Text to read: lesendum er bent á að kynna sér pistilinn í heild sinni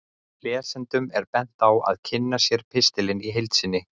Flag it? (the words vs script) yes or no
no